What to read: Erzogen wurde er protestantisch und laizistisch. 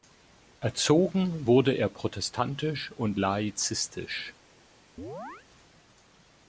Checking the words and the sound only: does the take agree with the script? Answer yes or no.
no